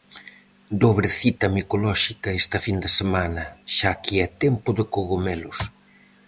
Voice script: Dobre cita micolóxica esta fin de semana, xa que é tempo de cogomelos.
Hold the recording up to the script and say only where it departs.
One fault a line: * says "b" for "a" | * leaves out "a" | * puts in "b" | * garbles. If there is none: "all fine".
all fine